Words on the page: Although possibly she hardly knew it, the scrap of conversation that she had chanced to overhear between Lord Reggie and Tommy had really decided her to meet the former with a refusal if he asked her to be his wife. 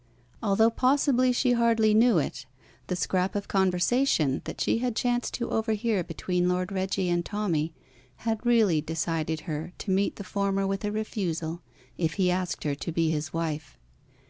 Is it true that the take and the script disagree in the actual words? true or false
false